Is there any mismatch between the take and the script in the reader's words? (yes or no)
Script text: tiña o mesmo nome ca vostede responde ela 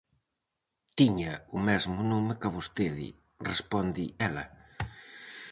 no